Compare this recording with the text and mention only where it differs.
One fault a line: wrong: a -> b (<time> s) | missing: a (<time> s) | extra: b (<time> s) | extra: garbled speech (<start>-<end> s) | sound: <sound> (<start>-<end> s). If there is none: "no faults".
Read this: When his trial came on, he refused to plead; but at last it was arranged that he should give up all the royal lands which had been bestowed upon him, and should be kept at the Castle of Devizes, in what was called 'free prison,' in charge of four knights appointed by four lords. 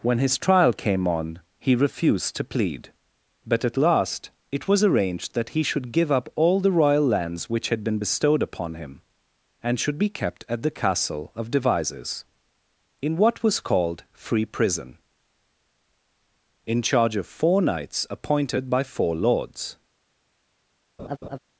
sound: laugh (21.0-21.4 s)